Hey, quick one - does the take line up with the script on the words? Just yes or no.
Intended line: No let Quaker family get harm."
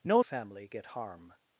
no